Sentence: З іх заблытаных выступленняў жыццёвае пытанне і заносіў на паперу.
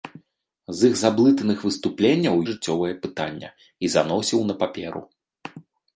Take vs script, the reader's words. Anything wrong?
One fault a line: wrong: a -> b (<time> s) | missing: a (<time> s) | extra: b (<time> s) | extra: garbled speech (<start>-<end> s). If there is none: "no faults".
no faults